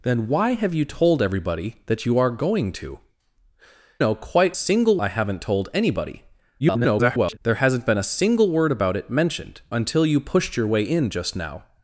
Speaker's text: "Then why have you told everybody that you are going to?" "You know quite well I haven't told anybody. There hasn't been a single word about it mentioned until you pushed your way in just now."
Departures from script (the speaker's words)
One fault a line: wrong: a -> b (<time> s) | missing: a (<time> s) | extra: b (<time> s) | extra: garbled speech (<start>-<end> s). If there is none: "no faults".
missing: You (3.0 s)
wrong: well -> single (4.5 s)
extra: garbled speech (6.6-7.4 s)